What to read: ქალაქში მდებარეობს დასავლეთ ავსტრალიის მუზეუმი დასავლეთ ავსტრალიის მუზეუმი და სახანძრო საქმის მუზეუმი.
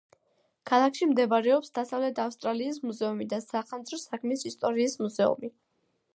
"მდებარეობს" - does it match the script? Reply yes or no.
yes